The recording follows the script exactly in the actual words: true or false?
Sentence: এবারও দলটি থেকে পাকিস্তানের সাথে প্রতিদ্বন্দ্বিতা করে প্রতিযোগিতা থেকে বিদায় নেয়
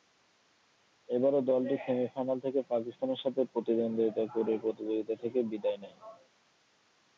false